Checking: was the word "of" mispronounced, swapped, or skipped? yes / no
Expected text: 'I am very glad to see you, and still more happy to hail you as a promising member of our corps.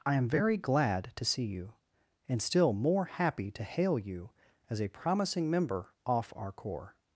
yes